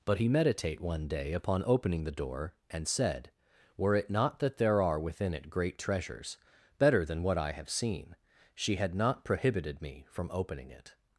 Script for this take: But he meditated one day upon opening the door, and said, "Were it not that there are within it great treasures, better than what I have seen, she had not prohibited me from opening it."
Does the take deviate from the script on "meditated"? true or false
true